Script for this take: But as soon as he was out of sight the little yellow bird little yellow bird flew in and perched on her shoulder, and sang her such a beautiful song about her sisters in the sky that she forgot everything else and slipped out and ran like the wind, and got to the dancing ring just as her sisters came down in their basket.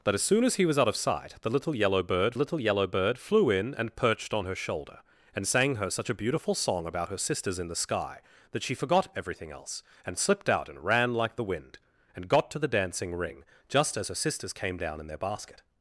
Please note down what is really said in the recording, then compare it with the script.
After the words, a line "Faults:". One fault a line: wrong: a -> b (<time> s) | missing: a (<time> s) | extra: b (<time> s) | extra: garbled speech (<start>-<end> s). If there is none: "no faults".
But as soon as he was out of sight the little yellow bird little yellow bird flew in and perched on her shoulder, and sang her such a beautiful song about her sisters in the sky that she forgot everything else and slipped out and ran like the wind, and got to the dancing ring just as her sisters came down in their basket.
Faults:
no faults